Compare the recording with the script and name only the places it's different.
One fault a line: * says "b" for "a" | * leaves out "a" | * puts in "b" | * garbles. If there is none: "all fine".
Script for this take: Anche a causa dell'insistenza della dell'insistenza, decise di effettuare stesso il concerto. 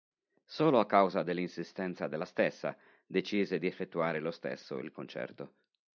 * says "Solo" for "Anche"
* says "stessa" for "dell'insistenza"
* puts in "lo"